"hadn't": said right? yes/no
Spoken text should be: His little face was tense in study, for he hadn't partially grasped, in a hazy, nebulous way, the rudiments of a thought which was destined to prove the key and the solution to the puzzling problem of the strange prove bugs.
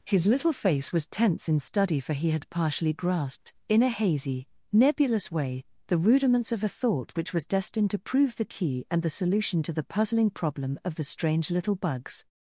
no